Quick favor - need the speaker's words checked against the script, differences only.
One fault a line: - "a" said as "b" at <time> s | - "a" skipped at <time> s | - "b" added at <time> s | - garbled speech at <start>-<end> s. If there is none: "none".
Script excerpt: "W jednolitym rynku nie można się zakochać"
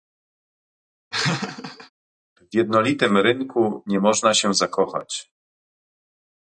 none